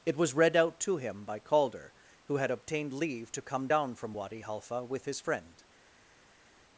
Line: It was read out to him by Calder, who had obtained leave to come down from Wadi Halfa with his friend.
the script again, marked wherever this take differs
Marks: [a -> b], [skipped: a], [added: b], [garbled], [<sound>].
It was read out to him by Calder, who had obtained leave to come down from Wadi Halfa with his friend.